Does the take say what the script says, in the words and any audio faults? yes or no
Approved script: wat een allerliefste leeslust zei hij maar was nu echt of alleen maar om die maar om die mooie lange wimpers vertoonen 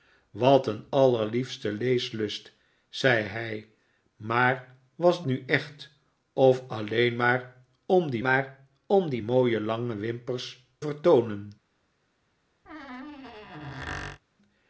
no